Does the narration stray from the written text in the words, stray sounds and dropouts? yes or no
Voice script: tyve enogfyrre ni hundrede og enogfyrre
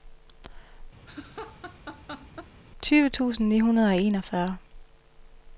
yes